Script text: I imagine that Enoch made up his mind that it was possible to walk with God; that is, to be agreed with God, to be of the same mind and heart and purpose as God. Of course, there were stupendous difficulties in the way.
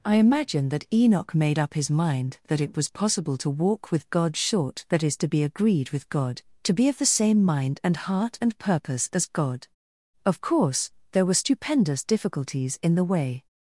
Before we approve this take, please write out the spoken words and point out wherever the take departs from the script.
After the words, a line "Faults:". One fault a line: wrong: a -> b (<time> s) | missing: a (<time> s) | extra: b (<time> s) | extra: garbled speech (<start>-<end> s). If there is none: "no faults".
I imagine that Enoch made up his mind that it was possible to walk with God; short that is, to be agreed with God, to be of the same mind and heart and purpose as God. Of course, there were stupendous difficulties in the way.
Faults:
extra: short (4.4 s)